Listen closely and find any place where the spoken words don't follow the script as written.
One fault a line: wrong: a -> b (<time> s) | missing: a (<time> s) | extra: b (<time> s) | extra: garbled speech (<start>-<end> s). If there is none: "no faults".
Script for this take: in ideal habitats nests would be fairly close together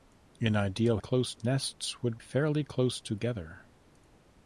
wrong: habitats -> close (1.0 s)
missing: be (2.2 s)